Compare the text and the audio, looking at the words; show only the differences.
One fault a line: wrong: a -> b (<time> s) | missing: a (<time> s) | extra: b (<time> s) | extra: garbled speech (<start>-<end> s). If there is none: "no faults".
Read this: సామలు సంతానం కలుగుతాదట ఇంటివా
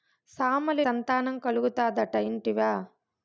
no faults